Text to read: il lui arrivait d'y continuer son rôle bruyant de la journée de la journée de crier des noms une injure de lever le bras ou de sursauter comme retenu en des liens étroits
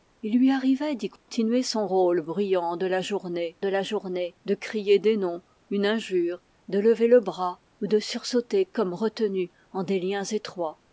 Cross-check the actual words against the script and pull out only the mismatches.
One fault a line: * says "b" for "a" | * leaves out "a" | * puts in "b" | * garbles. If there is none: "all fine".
all fine